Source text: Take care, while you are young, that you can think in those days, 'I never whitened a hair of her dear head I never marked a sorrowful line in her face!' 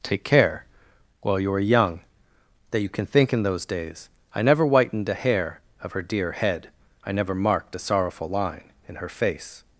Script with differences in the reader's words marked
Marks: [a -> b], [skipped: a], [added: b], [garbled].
Take care, while you are young, that you can think in those days, 'I never whitened a hair of her dear head I never marked a sorrowful line in her face!'